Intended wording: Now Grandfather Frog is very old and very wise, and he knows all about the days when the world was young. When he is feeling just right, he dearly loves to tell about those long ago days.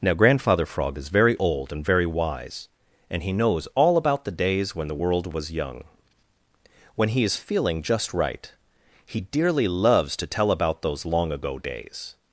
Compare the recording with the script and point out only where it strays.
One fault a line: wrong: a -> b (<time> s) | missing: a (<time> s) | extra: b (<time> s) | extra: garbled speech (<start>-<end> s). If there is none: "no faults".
no faults